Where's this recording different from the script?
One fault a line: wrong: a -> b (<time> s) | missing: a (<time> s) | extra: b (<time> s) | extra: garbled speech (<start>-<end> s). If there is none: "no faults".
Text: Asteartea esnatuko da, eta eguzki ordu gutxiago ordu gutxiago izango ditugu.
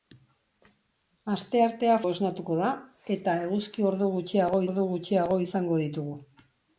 no faults